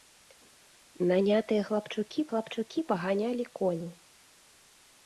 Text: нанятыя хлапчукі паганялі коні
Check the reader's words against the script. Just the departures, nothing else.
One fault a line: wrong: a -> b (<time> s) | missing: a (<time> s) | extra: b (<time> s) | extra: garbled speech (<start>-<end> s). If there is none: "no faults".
extra: хлапчукі (2.3 s)